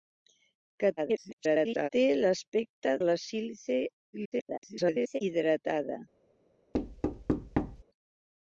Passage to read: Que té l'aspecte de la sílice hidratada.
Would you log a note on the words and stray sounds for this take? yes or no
yes